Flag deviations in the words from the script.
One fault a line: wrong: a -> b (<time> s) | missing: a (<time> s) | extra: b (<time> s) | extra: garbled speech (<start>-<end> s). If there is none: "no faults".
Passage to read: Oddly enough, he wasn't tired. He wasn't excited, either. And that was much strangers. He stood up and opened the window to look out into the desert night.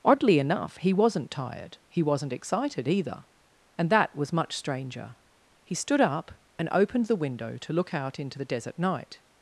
wrong: strangers -> stranger (4.5 s)